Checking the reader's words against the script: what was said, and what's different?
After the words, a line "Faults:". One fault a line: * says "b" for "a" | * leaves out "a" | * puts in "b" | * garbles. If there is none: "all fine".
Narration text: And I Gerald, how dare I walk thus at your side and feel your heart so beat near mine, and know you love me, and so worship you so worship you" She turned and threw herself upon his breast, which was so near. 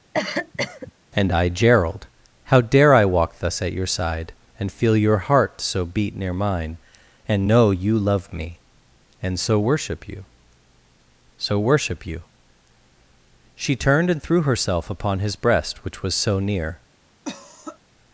And I Gerald, how dare I walk thus at your side and feel your heart so beat near mine, and know you love me, and so worship you so worship you" She turned and threw herself upon his breast, which was so near.
Faults:
all fine